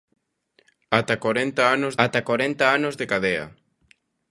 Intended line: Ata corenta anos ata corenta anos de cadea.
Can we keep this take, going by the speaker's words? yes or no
yes